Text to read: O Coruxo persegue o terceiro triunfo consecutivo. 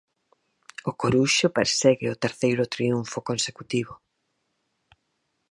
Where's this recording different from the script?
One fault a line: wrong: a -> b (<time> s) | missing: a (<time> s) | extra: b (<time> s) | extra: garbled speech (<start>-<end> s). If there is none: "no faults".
no faults